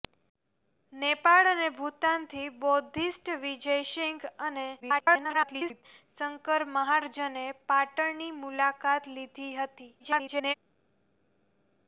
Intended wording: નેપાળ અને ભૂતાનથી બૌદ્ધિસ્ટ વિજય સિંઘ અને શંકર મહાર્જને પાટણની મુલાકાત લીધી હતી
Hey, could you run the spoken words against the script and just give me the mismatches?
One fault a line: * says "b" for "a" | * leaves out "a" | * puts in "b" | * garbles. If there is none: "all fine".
* garbles
* garbles